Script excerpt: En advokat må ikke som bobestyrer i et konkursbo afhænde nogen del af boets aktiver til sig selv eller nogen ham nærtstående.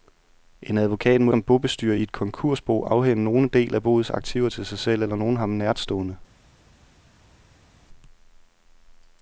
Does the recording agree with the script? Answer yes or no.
no